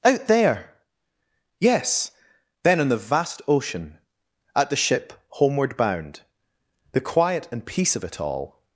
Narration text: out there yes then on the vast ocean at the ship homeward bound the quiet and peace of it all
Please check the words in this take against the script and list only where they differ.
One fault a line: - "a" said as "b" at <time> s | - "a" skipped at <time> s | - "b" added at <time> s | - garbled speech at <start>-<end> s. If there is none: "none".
none